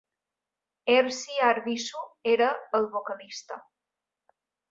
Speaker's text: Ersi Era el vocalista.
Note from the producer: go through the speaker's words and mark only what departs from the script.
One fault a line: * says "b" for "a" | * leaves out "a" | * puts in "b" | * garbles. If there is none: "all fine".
* puts in "Arvisu"